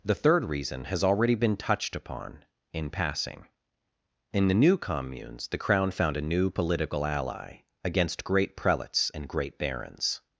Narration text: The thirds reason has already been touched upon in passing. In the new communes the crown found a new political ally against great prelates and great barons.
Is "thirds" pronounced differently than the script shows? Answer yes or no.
yes